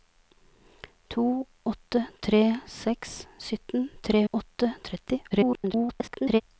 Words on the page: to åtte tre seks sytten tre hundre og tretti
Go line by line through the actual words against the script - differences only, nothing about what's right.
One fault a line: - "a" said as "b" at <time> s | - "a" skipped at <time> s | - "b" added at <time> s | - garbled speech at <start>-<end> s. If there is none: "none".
- "hundre" said as "åtte" at 4.3 s
- garbled speech at 5.3-6.4 s